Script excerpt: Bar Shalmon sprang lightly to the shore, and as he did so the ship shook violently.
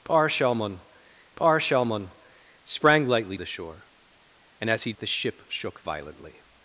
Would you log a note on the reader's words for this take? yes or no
yes